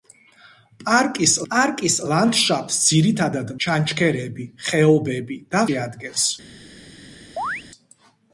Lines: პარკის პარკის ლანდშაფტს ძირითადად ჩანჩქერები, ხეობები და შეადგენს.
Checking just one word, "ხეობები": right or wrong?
right